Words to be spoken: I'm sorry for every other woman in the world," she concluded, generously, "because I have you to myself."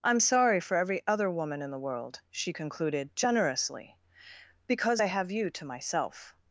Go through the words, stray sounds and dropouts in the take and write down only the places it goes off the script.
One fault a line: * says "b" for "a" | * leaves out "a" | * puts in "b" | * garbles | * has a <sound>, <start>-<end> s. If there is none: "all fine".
all fine